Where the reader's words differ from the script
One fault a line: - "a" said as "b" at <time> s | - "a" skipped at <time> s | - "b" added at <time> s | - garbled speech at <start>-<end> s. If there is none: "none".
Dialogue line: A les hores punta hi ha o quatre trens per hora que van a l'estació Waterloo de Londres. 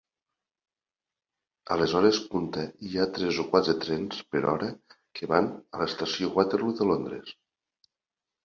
- "tres" added at 3.2 s